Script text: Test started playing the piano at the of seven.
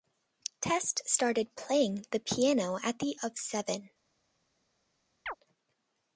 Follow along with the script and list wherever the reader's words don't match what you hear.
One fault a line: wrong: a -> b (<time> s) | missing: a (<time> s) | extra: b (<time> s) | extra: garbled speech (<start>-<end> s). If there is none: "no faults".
no faults